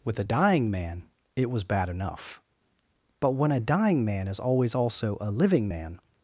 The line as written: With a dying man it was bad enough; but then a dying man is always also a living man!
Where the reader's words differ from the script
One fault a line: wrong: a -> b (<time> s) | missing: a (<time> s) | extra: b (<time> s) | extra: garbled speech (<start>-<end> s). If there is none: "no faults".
wrong: then -> when (3.3 s)